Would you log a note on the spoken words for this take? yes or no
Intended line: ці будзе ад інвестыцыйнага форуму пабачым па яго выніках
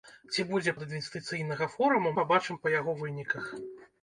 no